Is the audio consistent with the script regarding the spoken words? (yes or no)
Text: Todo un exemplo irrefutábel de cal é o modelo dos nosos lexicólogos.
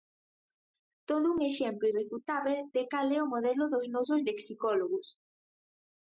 yes